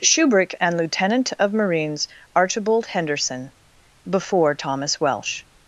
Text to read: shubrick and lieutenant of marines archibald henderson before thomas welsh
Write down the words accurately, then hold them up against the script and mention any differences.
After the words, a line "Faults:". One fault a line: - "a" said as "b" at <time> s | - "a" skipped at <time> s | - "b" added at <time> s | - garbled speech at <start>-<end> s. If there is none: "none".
shubrick and lieutenant of marines archibald henderson before thomas welsh
Faults:
none